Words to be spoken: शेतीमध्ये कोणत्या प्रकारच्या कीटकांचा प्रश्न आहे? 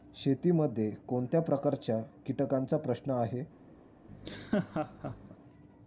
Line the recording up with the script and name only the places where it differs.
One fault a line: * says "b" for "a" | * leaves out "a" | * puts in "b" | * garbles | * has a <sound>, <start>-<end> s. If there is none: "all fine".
* has a laugh, 4.1-5.4 s